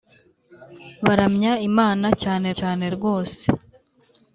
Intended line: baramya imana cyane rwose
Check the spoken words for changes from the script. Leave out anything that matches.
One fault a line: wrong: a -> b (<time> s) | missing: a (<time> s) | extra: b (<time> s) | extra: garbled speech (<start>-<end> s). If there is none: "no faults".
extra: cyane (2.6 s)